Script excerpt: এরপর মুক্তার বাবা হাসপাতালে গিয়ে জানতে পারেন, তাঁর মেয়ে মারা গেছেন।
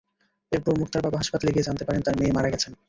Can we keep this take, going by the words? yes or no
yes